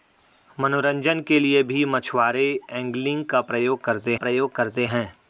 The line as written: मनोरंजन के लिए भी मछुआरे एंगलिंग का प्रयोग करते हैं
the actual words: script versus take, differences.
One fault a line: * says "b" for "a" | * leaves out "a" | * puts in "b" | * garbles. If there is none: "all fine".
* puts in "प्रयोग करते"